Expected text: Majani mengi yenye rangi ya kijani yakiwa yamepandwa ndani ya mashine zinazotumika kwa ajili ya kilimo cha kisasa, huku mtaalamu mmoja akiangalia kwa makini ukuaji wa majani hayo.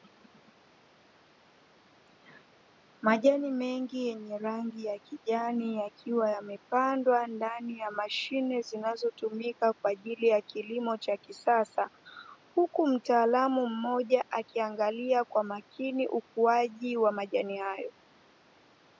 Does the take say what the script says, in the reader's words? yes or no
yes